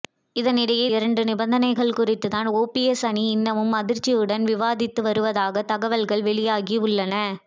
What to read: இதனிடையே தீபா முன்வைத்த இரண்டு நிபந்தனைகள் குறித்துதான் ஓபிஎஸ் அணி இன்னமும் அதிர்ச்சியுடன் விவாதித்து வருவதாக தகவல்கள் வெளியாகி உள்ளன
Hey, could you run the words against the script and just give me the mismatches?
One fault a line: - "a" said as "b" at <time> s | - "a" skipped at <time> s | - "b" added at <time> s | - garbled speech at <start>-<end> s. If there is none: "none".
- "தீபா முன்வைத்த" skipped at 0.8 s